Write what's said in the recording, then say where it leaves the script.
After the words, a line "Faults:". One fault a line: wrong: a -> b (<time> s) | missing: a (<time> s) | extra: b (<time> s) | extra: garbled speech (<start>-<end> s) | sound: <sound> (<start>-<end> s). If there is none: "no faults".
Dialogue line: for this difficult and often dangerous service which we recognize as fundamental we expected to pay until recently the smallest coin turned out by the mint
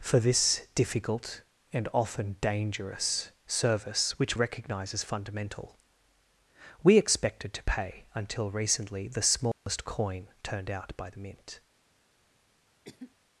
for this difficult and often dangerous service which recognize as fundamental we expected to pay until recently the smallest coin turned out by the mint
Faults:
missing: we (4.4 s)
sound: dropout (9.5-9.7 s)
sound: cough (12.8-13.1 s)